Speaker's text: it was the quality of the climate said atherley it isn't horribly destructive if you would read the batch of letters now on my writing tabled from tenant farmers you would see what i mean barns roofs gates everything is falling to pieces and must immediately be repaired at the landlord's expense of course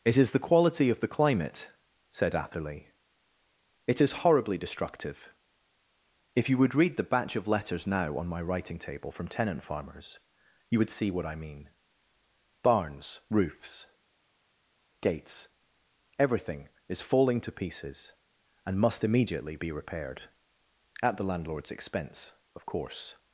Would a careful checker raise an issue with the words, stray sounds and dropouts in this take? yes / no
yes